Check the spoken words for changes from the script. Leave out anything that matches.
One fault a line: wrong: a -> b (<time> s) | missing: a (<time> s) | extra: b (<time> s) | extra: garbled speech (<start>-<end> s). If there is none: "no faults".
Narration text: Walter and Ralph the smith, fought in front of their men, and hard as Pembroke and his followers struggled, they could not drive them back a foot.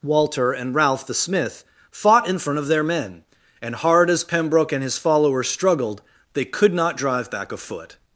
missing: them (7.3 s)